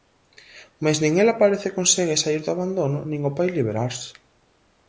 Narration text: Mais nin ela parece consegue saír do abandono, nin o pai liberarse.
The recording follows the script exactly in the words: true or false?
true